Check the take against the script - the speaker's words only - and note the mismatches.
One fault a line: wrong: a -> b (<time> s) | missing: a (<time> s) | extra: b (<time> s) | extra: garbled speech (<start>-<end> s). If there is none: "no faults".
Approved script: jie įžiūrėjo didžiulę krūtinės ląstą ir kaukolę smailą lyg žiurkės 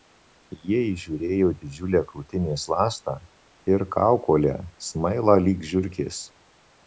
no faults